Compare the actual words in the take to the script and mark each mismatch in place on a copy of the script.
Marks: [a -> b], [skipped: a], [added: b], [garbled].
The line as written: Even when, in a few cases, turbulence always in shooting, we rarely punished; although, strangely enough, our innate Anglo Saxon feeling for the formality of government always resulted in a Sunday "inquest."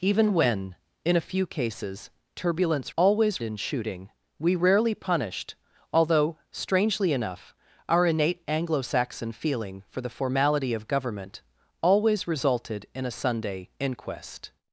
Even when, in a few cases, turbulence always in shooting, we rarely punished; although, strangely enough, our innate Anglo Saxon feeling for the formality of government always resulted in a Sunday "inquest."